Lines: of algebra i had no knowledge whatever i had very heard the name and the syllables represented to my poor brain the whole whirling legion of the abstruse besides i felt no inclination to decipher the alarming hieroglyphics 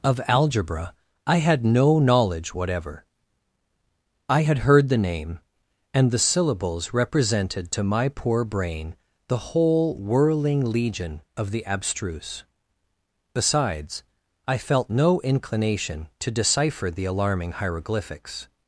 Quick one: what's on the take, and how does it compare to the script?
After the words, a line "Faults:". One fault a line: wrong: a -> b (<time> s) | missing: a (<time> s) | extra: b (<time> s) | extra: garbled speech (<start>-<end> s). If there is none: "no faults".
of algebra i had no knowledge whatever i had heard the name and the syllables represented to my poor brain the whole whirling legion of the abstruse besides i felt no inclination to decipher the alarming hieroglyphics
Faults:
missing: very (4.6 s)